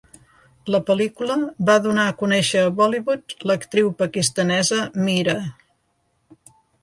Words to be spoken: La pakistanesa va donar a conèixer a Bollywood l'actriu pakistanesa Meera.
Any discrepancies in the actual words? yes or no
yes